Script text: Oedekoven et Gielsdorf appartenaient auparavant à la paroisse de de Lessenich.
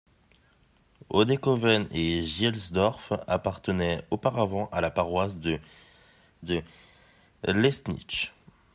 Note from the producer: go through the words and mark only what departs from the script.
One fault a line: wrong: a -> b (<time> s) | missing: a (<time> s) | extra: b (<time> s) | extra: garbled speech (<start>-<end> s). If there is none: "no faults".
no faults